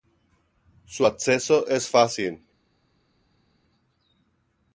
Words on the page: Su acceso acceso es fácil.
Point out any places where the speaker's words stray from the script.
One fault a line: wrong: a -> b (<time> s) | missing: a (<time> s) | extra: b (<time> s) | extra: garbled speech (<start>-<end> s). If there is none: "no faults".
missing: acceso (1.7 s)